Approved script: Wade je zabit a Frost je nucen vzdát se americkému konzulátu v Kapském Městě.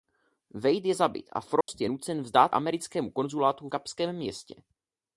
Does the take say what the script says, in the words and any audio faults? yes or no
no